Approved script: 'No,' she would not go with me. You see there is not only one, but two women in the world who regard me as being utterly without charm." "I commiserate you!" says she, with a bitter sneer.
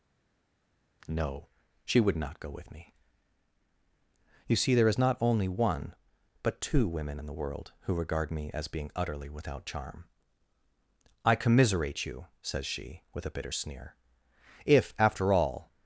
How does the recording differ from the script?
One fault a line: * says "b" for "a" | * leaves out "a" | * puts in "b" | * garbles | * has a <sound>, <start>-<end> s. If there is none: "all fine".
* puts in "If after all"